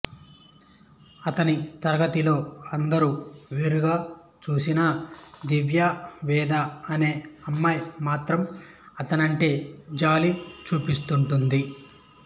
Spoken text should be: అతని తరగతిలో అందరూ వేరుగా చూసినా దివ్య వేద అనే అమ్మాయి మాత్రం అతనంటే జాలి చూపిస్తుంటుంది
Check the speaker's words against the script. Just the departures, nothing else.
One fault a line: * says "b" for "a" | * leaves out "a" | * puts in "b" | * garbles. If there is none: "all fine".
all fine